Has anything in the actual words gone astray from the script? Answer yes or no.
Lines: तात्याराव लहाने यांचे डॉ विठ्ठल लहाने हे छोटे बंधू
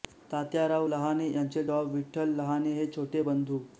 no